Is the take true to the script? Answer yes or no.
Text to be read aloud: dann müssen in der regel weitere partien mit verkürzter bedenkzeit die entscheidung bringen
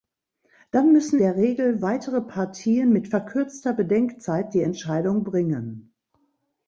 no